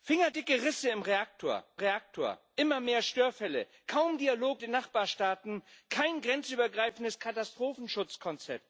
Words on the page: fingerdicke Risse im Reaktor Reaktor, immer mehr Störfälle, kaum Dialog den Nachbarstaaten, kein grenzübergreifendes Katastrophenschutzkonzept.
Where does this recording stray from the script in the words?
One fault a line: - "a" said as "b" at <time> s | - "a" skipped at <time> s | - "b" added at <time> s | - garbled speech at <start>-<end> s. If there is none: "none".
none